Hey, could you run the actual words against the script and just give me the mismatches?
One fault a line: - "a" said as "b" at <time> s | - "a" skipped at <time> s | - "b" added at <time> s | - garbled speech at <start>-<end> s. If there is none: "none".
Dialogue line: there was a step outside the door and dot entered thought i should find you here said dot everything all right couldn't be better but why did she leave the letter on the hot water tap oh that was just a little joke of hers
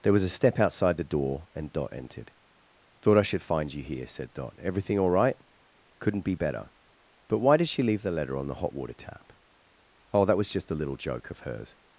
none